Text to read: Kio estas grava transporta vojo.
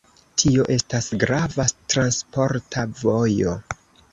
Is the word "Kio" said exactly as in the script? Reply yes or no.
no